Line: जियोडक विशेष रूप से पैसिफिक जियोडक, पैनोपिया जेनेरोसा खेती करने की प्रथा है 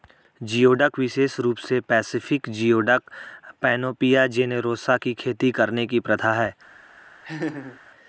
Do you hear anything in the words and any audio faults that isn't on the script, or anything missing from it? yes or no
yes